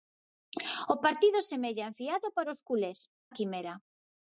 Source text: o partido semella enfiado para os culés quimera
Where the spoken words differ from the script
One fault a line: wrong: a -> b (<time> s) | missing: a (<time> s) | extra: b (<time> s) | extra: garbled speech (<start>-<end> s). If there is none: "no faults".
no faults